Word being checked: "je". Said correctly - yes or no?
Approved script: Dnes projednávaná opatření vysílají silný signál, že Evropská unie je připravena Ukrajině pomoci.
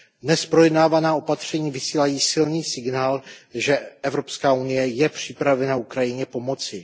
yes